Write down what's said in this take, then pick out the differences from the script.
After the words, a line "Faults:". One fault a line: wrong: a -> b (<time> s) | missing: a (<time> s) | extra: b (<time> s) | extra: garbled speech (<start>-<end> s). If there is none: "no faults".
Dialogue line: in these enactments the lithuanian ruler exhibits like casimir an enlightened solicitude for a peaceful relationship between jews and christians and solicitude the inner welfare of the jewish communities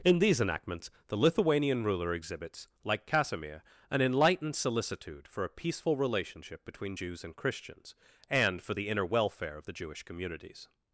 in these enactments the lithuanian ruler exhibits like casimir an enlightened solicitude for a peaceful relationship between jews and christians and for the inner welfare of the jewish communities
Faults:
wrong: solicitude -> for (8.6 s)